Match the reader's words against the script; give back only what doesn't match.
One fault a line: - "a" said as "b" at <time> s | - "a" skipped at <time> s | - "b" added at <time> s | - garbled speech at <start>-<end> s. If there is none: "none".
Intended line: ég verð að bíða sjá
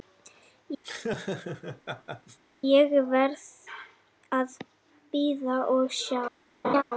- "og" added at 5.8 s